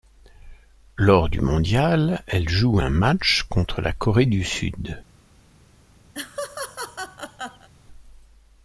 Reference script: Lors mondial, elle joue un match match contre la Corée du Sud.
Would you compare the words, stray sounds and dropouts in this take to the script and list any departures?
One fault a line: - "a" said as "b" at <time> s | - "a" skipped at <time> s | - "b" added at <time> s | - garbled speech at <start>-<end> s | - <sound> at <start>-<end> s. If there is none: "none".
- "du" added at 1.3 s
- "match" skipped at 3.4 s
- laugh at 6.1-7.7 s